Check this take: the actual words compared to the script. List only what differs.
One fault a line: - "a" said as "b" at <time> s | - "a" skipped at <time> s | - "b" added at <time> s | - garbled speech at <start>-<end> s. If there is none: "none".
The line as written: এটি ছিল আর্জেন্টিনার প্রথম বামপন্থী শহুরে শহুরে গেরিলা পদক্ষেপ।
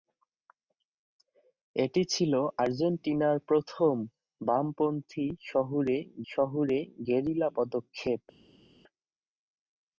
none